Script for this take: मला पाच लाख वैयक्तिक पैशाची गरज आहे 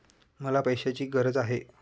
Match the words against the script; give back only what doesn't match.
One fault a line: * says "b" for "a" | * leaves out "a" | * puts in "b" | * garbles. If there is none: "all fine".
* leaves out "पाच लाख वैयक्तिक"